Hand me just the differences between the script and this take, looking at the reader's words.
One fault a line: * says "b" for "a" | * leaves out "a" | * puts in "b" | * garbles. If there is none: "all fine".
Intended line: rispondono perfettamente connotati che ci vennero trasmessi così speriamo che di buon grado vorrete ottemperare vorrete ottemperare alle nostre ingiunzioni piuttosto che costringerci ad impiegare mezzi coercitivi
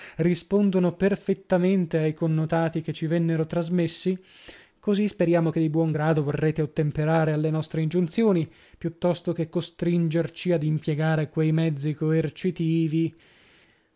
* puts in "ai"
* leaves out "vorrete ottemperare"
* puts in "quei"